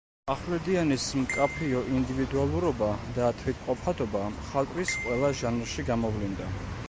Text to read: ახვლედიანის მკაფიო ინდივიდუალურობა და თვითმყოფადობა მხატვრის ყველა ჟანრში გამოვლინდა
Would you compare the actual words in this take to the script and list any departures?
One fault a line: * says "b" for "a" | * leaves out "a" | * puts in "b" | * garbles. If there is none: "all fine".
all fine